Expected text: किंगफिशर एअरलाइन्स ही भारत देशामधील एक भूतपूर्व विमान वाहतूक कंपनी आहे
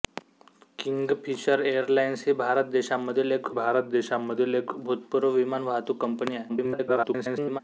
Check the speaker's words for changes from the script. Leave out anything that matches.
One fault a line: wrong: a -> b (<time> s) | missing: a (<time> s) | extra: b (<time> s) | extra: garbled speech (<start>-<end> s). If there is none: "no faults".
extra: भारत देशामधील एक (3.5 s)
extra: garbled speech (6.5-7.6 s)